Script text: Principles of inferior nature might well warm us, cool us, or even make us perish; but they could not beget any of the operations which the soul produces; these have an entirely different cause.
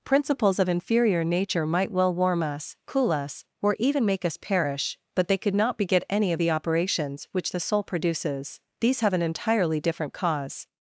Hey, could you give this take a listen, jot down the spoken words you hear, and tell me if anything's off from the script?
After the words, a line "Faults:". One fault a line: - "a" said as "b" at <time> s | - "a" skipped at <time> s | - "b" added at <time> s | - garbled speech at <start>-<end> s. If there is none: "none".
Principles of inferior nature might well warm us, cool us, or even make us perish; but they could not beget any of the operations which the soul produces; these have an entirely different cause.
Faults:
none